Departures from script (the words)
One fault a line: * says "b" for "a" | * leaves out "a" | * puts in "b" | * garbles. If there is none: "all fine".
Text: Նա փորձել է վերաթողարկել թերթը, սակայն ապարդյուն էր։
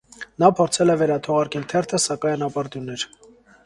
all fine